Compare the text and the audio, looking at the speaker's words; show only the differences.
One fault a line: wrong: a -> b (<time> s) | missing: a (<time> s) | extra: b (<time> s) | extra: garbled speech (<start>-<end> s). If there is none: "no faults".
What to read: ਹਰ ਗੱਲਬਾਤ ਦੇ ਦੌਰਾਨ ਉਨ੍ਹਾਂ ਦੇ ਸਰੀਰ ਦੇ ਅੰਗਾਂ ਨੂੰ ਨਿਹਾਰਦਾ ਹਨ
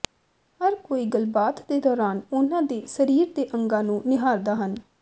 extra: ਕੋਈ (0.8 s)